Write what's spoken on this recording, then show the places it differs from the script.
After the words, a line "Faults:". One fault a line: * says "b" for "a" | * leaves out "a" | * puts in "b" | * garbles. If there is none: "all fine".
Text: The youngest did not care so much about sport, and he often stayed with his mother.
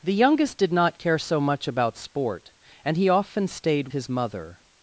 The youngest did not care so much about sport, and he often stayed his mother.
Faults:
* leaves out "with"